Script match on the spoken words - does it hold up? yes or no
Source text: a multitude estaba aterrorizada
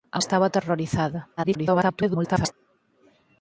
no